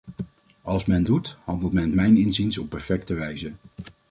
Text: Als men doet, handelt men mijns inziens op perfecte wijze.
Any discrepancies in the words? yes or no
no